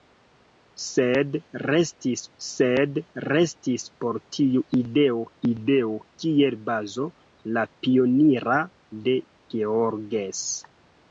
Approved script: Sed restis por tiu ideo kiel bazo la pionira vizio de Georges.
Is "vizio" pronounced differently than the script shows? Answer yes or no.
yes